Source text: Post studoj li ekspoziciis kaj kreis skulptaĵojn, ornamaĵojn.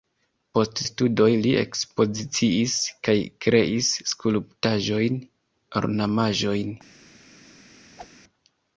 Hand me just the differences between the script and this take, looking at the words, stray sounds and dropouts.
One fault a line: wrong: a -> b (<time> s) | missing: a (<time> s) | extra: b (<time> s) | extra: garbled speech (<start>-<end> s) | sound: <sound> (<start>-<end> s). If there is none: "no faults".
sound: whoosh (8.0-8.1 s)